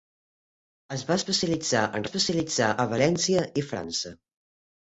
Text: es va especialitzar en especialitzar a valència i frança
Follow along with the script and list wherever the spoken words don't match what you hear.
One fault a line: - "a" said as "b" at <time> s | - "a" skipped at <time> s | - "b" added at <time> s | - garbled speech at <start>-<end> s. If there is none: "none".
none